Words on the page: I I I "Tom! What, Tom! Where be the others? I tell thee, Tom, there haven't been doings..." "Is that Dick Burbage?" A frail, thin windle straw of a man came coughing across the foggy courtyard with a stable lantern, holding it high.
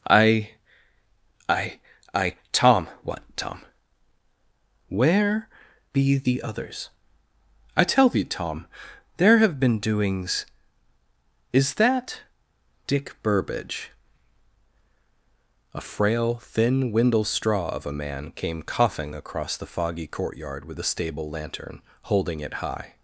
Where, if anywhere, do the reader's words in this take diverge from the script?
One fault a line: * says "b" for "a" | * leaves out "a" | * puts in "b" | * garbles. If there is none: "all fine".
* says "have" for "haven't"